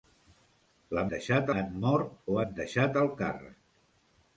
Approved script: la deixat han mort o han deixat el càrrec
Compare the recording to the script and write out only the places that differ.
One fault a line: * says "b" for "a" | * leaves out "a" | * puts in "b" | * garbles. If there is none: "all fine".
all fine